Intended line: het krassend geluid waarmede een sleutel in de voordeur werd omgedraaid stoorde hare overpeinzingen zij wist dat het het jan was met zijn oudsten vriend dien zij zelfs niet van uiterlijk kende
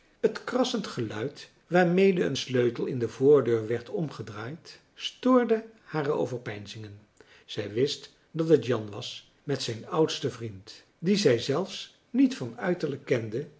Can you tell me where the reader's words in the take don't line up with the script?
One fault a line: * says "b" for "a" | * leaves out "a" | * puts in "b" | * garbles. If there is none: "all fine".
* leaves out "het"